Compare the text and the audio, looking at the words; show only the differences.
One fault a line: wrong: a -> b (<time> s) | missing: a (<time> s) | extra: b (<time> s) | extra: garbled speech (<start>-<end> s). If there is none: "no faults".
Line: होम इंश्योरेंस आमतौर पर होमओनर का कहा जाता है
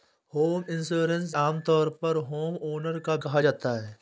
no faults